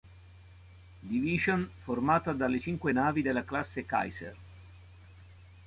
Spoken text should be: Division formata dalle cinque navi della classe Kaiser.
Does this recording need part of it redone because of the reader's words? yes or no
no